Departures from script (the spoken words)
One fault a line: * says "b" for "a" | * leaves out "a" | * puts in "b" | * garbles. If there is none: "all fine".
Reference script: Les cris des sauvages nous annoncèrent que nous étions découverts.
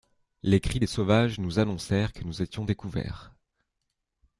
all fine